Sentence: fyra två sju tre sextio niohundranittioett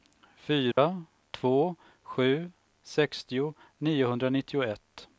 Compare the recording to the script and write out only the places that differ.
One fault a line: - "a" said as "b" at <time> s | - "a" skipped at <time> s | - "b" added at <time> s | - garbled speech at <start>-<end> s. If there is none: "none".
- "tre" skipped at 2.5 s